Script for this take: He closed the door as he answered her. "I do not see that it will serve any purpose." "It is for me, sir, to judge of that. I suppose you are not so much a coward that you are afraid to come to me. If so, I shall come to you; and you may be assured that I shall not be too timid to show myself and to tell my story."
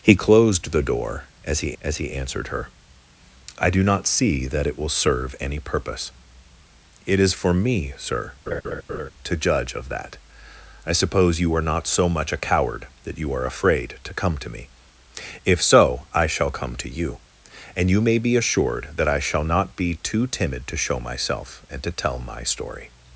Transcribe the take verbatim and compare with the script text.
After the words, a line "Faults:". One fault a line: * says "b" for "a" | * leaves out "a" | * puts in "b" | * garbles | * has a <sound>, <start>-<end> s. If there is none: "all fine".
He closed the door as he as he answered her. "I do not see that it will serve any purpose." "It is for me, sir, to judge of that. I suppose you are not so much a coward that you are afraid to come to me. If so, I shall come to you; and you may be assured that I shall not be too timid to show myself and to tell my story."
Faults:
* puts in "as he"
* has a laugh, 8.5-9.1 s